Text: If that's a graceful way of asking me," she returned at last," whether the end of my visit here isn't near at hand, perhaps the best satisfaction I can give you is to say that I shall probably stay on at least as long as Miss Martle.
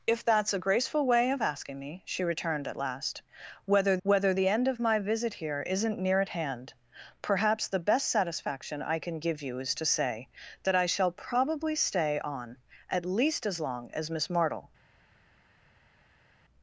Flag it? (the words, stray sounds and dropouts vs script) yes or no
yes